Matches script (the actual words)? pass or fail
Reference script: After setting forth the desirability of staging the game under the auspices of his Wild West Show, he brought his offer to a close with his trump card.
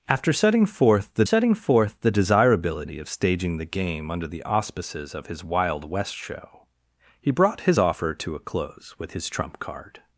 fail